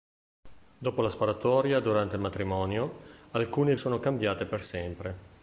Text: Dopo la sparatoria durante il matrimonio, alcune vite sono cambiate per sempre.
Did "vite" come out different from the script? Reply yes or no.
yes